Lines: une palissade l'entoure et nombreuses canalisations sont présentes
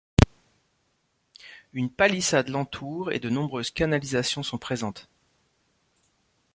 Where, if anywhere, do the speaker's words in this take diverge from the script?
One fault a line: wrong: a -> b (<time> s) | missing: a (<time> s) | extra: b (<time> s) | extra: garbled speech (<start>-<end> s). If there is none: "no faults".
extra: de (3.2 s)